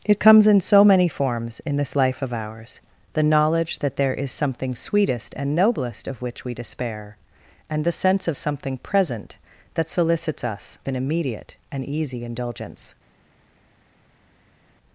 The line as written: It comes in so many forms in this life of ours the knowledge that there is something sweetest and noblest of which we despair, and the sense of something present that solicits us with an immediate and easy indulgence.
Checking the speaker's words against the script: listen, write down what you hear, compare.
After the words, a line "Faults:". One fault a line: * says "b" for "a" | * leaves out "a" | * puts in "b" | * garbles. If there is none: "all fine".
It comes in so many forms in this life of ours the knowledge that there is something sweetest and noblest of which we despair, and the sense of something present that solicits us an immediate and easy indulgence.
Faults:
* leaves out "with"